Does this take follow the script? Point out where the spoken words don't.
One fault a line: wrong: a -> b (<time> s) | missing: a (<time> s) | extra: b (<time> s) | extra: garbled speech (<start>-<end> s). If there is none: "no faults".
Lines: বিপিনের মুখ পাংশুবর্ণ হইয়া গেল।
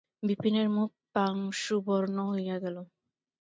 no faults